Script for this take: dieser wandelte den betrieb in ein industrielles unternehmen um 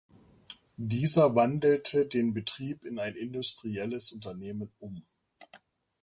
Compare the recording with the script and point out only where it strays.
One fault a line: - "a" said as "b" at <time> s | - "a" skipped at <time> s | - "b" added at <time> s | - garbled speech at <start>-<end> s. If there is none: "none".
none